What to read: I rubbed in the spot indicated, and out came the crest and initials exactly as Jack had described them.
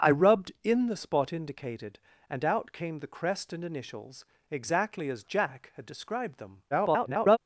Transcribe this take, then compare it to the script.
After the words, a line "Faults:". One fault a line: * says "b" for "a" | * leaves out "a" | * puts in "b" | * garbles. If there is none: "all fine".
I rubbed in the spot indicated, and out came the crest and initials exactly as Jack had described them. [garbled]
Faults:
* garbles